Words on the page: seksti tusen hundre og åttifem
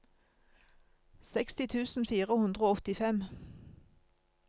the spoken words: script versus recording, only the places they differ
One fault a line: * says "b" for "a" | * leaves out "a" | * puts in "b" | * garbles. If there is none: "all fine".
* puts in "fire"